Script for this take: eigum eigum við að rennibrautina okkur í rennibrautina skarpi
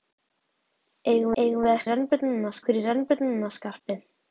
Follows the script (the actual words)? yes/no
yes